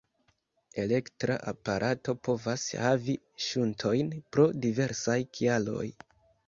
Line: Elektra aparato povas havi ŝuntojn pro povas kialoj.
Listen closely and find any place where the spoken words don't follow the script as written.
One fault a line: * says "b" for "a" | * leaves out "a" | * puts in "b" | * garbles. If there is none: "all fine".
* says "diversaj" for "povas"